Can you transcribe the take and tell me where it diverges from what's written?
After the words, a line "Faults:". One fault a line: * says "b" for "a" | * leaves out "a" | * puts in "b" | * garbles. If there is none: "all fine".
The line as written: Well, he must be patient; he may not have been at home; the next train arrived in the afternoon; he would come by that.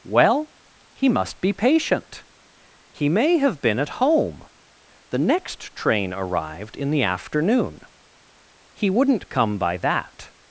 Well, he must be patient; he may have been at home; the next train arrived in the afternoon; he wouldn't come by that.
Faults:
* leaves out "not"
* says "wouldn't" for "would"